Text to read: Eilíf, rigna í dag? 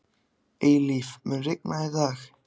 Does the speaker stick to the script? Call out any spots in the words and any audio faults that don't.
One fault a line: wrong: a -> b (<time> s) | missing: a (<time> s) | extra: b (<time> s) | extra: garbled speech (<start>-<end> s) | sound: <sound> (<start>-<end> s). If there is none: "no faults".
extra: mun (1.3 s)